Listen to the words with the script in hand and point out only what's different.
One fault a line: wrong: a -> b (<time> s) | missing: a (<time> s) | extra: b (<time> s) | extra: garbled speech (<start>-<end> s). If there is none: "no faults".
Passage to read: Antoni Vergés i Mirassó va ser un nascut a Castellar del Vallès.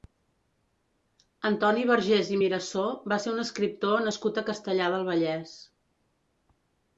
extra: escriptor (3.5 s)